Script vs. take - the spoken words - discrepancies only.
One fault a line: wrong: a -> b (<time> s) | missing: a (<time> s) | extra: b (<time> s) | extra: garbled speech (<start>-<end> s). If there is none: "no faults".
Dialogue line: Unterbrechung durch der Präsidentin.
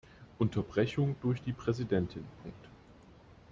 wrong: der -> die (1.4 s)